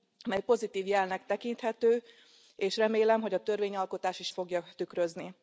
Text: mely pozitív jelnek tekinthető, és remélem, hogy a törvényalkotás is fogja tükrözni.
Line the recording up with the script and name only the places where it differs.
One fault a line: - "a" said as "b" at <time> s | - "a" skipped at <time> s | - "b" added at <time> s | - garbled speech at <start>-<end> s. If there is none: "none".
none